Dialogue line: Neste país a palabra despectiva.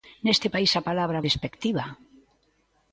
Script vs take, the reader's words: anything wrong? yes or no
no